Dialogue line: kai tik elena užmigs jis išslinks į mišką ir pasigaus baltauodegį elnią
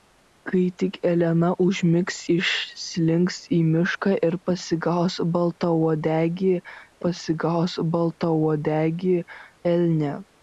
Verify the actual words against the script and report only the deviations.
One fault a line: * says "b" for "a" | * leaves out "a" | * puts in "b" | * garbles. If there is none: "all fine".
* leaves out "jis"
* puts in "pasigaus baltauodegį"